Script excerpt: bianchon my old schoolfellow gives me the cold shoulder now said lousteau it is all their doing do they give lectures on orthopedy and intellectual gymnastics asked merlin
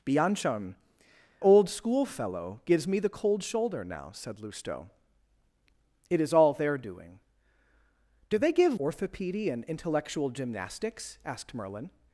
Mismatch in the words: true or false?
true